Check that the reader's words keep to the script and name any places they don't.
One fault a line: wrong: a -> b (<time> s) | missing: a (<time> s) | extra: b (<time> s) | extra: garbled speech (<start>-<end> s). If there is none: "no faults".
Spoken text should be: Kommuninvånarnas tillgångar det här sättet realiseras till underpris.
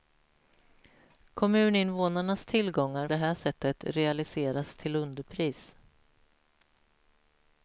no faults